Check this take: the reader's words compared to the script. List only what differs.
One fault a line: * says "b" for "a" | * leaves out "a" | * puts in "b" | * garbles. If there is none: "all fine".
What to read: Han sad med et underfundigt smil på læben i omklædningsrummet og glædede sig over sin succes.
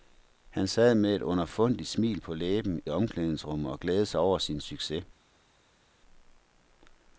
* leaves out "i"